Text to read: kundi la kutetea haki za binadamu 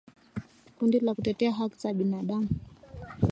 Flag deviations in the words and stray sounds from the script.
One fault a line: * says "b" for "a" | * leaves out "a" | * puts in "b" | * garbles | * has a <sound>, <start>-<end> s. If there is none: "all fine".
all fine